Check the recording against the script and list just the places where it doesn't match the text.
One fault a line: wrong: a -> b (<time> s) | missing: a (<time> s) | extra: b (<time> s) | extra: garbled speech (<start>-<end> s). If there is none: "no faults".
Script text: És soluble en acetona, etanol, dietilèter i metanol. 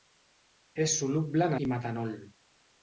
missing: acetona etanol dietilèter (1.6 s)